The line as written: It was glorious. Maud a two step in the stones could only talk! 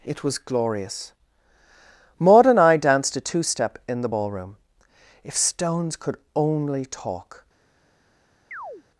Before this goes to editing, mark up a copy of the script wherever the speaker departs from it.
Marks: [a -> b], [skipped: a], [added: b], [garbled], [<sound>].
It was glorious. Maud [added: and I danced] a two step in the [added: ballroom If] stones could only talk! [chirp]